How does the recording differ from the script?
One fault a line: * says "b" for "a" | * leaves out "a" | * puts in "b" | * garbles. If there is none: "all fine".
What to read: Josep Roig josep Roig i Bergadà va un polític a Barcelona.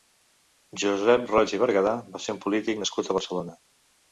* leaves out "josep Roig"
* puts in "ser"
* puts in "nascut"